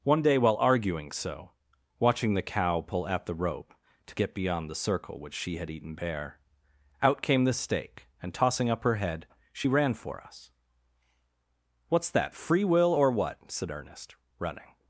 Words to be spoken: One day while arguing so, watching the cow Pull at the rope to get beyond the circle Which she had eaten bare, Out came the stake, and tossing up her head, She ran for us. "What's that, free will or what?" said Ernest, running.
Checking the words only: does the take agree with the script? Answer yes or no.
yes